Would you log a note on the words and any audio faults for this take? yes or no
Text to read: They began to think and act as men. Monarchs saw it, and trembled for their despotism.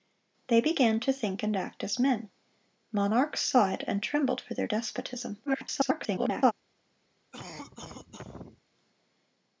yes